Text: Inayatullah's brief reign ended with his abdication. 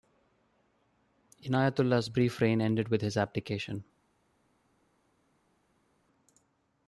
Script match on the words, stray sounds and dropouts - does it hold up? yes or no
yes